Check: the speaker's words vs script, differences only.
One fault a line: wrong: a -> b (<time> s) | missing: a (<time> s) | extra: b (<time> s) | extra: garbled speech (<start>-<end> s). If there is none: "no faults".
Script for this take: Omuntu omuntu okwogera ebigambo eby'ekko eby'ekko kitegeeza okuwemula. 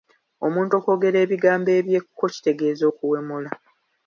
missing: omuntu (0.7 s)
missing: eby'ekko (2.2 s)